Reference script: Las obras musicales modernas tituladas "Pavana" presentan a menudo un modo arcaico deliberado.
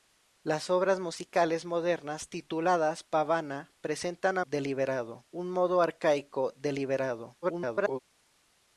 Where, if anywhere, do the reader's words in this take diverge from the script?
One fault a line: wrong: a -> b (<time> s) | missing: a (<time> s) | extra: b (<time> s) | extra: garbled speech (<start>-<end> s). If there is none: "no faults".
wrong: menudo -> deliberado (4.4 s)
extra: garbled speech (7.4-8.0 s)